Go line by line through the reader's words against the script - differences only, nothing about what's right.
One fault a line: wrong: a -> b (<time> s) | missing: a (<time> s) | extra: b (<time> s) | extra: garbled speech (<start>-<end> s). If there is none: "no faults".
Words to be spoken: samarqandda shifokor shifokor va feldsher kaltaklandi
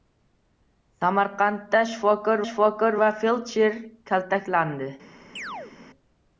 no faults